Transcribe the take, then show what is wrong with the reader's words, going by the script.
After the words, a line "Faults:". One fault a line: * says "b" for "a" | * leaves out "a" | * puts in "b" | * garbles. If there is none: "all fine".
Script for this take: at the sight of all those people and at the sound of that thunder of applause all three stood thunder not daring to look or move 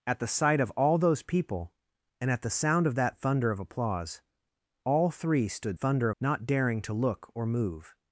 at the sight of all those people and at the sound of that thunder of applause all three stood thunder not daring to look or move
Faults:
all fine